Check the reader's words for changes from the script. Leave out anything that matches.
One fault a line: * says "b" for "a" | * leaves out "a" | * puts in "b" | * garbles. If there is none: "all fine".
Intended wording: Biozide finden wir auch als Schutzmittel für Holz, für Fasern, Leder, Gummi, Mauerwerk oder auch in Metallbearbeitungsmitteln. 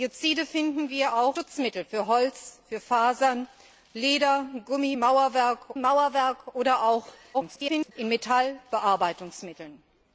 * leaves out "als"
* puts in "Mauerwerk"
* garbles